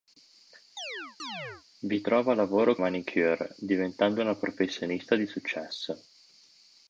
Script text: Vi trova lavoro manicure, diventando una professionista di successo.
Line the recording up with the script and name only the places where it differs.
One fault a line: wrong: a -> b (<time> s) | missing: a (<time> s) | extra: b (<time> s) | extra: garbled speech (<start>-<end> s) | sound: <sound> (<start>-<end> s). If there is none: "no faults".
sound: chirp (0.8-1.6 s)